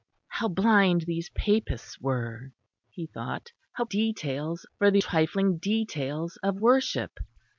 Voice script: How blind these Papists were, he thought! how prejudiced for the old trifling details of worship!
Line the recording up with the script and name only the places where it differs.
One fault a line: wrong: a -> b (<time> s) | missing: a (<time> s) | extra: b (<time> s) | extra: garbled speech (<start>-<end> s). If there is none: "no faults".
wrong: prejudiced -> details (3.8 s)
missing: old (5.0 s)